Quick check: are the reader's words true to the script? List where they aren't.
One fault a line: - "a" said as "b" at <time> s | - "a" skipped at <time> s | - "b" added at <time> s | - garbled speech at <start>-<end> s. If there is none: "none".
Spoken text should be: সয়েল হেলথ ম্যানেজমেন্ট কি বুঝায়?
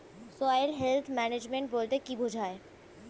- "বলতে" added at 1.7 s